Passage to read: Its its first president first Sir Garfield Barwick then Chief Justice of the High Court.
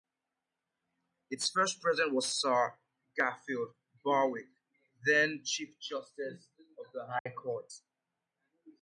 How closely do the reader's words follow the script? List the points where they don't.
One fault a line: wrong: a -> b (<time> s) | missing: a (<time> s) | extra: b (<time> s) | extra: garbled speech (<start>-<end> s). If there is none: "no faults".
missing: its (1.5 s)
wrong: first -> was (2.1 s)